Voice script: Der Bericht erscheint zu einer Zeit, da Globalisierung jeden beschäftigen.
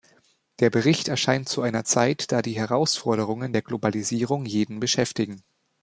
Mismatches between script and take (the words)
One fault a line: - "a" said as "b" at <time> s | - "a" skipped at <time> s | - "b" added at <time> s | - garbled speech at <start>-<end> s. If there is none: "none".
- "die Herausforderungen der" added at 2.4 s